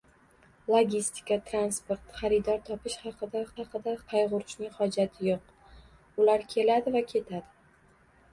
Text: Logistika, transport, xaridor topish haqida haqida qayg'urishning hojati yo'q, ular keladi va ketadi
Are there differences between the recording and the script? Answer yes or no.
no